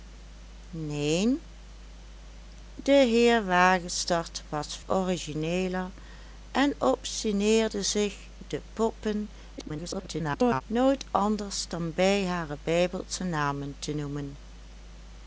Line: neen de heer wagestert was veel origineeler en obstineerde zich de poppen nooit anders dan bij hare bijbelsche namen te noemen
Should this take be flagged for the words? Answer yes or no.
yes